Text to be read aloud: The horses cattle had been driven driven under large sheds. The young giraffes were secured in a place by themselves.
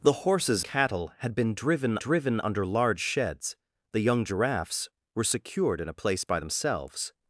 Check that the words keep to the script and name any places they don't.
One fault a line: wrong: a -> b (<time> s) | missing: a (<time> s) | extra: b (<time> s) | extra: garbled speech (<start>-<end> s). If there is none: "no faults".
no faults